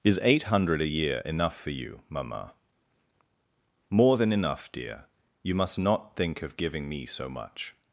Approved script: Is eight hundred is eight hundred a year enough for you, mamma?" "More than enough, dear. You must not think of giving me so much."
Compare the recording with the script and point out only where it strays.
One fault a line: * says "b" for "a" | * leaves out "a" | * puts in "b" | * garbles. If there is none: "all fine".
* leaves out "is eight hundred"